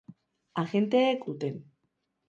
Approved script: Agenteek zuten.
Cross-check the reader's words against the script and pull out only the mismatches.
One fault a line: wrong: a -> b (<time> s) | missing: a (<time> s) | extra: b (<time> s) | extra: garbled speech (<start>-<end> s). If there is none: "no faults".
no faults